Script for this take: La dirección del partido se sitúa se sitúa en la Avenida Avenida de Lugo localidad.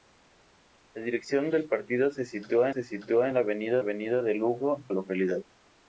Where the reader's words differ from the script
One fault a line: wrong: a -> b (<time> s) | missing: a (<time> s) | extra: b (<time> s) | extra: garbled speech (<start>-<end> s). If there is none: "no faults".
no faults